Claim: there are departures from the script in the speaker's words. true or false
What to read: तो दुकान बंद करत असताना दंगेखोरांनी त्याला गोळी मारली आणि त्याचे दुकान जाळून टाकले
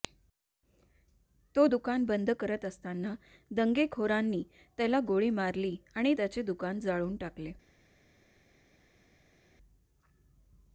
false